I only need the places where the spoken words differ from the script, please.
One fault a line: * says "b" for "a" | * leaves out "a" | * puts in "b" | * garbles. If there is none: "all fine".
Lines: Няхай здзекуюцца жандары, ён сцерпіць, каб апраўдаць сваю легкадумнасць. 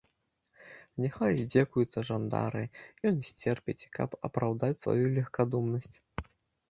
all fine